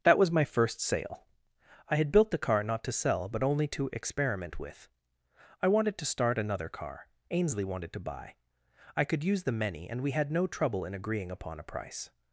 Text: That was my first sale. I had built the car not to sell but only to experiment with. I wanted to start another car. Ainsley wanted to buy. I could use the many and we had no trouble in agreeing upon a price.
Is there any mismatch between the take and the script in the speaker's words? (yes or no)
no